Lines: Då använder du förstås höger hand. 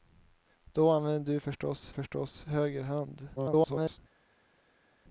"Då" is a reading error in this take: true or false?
false